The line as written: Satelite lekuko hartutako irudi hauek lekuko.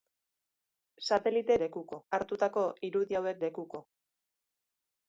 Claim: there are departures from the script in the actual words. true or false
false